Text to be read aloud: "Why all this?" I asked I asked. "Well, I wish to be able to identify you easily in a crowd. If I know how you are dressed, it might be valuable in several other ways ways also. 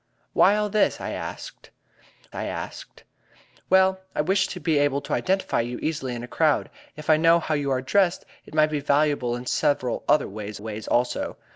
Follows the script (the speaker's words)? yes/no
yes